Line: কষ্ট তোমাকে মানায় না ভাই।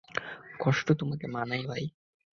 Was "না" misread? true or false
true